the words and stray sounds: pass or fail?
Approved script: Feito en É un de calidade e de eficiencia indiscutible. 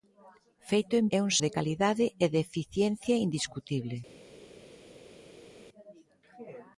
pass